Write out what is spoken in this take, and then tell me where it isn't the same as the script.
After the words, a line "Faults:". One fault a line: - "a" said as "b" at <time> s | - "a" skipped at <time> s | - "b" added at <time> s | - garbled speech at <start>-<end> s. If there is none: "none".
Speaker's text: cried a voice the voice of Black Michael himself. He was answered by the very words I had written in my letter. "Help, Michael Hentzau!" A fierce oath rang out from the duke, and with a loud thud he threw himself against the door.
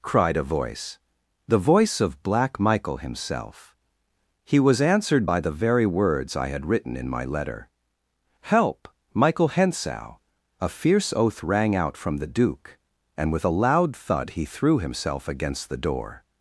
cried a voice the voice of Black Michael himself. He was answered by the very words I had written in my letter. "Help, Michael Hentzau!" A fierce oath rang out from the duke, and with a loud thud he threw himself against the door.
Faults:
none